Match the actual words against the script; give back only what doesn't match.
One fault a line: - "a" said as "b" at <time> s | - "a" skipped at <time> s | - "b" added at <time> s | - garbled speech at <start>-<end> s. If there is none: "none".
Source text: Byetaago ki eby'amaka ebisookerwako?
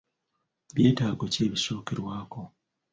- "eby'amaka" skipped at 1.4 s